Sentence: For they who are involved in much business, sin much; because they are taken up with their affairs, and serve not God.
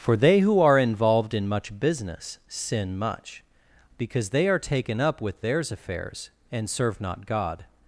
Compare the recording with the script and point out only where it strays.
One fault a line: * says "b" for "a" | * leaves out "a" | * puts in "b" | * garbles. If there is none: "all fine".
* says "theirs" for "their"